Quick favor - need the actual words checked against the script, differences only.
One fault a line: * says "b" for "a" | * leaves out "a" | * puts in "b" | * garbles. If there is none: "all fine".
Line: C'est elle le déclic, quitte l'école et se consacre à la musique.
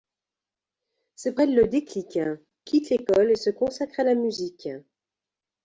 all fine